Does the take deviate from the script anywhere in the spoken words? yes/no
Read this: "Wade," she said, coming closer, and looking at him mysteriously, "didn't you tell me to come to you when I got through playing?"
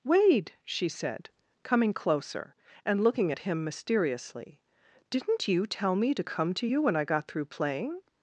no